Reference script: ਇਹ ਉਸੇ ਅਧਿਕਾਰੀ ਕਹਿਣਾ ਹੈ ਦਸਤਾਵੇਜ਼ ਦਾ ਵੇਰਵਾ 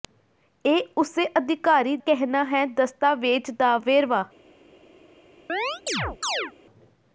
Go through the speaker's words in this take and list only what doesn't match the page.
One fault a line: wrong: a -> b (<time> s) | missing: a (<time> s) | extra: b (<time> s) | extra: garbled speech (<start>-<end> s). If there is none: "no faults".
no faults